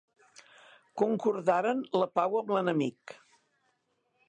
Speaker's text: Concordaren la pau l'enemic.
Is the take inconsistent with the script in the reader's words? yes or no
yes